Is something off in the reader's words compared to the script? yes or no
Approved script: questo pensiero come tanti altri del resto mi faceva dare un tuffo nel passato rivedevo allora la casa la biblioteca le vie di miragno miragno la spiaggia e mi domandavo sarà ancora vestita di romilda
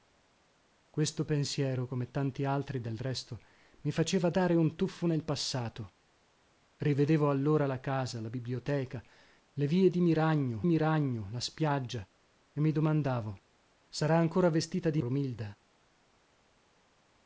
no